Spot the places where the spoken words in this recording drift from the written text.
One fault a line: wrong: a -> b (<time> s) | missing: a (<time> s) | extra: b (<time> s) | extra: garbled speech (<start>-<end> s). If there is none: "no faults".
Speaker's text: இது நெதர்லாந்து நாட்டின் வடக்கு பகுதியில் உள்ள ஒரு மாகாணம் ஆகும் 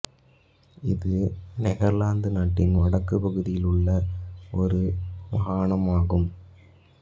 no faults